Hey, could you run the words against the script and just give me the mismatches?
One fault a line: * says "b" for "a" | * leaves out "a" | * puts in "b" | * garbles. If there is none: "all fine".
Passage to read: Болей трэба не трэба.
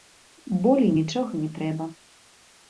* says "нічога" for "трэба"